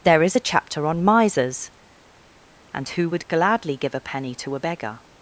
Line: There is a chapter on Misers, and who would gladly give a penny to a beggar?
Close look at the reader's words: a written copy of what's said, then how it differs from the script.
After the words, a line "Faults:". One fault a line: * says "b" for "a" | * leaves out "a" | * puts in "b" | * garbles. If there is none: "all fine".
There is a chapter on Misers, and who would gladly give a penny to a beggar?
Faults:
all fine